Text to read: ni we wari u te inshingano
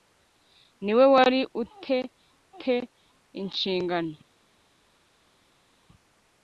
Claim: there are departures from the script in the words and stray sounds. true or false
true